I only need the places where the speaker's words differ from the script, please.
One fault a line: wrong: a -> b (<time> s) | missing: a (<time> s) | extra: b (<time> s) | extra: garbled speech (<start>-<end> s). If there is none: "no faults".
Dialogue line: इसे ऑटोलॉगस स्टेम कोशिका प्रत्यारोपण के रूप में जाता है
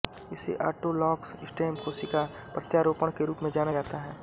extra: जाना (3.5 s)